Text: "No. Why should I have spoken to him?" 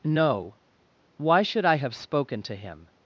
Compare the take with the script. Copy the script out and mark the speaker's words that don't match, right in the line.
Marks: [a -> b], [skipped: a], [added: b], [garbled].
"No. Why should I have spoken to him?"